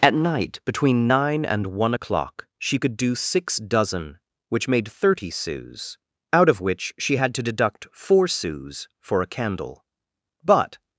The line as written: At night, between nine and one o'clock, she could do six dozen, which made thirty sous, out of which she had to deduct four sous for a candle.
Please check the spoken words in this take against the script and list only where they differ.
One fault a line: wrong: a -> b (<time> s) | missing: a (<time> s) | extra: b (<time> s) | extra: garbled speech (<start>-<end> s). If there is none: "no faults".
extra: But (10.4 s)